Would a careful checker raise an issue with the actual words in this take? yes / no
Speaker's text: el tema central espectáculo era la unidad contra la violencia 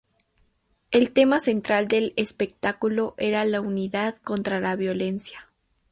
yes